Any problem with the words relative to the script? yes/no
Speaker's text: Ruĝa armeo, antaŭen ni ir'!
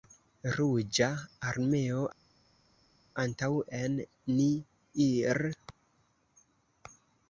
no